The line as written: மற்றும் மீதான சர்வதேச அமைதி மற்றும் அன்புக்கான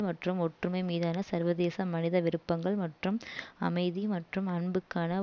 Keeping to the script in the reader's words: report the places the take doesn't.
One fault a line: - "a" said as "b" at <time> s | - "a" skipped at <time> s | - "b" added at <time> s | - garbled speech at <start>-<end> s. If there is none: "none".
- "ஒற்றுமை" added at 0.4 s
- "மனித விருப்பங்கள் மற்றும்" added at 1.9 s